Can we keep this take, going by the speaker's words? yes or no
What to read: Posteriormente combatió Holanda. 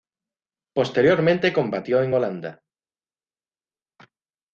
no